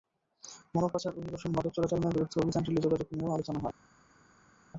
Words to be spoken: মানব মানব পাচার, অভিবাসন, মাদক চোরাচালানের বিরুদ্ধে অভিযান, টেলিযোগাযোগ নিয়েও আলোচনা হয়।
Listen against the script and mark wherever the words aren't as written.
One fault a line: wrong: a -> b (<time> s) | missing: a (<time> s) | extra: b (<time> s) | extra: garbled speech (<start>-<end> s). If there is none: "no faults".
missing: মানব (0.9 s)